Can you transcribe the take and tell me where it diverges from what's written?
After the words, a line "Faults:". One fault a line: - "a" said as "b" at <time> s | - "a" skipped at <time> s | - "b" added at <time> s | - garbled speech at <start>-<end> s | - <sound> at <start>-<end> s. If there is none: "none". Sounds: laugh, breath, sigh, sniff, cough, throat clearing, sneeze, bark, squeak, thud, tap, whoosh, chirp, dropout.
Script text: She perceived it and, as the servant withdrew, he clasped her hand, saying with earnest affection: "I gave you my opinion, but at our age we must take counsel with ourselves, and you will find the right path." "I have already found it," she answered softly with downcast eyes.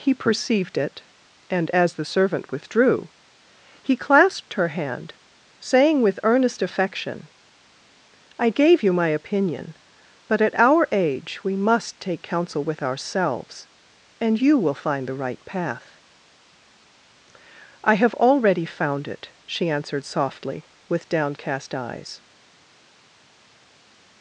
He perceived it and, as the servant withdrew, he clasped her hand, saying with earnest affection: "I gave you my opinion, but at our age we must take counsel with ourselves, and you will find the right path." "I have already found it," she answered softly with downcast eyes.
Faults:
- "She" said as "He" at 0.0 s